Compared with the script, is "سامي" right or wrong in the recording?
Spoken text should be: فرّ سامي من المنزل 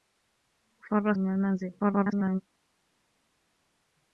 wrong